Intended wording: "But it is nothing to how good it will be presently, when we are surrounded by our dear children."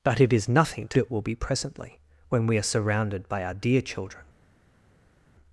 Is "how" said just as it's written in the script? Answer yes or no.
no